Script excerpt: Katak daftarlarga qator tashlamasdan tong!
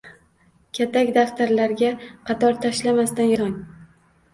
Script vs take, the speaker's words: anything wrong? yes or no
no